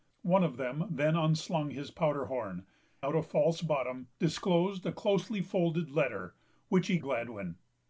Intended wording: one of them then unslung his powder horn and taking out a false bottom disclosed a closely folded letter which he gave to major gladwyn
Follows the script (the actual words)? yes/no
no